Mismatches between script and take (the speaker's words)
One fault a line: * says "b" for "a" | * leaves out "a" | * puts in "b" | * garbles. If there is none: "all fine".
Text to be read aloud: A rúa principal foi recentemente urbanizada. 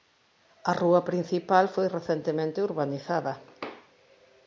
all fine